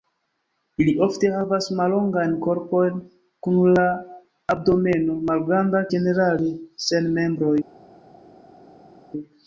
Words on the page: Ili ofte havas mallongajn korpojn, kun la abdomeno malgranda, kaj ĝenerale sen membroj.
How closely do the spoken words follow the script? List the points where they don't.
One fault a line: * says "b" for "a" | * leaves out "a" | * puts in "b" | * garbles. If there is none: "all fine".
* leaves out "kaj"